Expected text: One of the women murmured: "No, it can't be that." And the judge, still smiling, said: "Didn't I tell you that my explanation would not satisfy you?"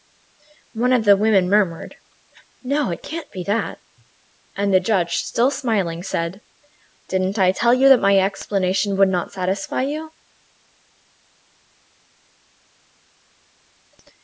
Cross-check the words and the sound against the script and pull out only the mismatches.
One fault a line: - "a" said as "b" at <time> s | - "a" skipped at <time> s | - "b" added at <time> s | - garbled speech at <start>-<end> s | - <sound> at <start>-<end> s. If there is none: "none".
none